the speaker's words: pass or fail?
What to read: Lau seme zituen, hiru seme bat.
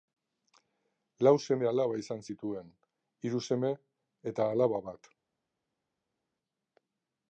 fail